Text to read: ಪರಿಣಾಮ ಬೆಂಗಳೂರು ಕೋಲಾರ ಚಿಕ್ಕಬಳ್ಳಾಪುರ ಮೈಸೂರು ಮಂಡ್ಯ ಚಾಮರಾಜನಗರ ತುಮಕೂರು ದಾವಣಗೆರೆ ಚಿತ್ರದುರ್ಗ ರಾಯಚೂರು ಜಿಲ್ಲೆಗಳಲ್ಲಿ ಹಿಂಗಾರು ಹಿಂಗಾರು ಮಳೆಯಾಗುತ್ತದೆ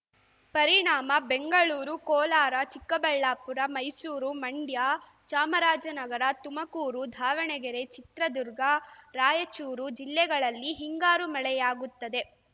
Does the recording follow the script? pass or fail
fail